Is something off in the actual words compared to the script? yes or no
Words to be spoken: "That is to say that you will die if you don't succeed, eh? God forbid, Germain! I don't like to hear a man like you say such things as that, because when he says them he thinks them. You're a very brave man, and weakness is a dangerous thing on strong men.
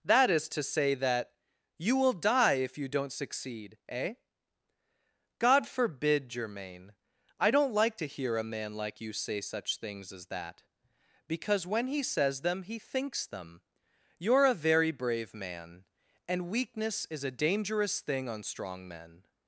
no